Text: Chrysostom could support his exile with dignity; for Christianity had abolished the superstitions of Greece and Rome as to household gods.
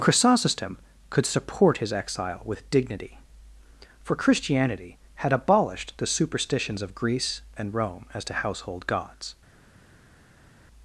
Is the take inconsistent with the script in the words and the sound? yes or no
no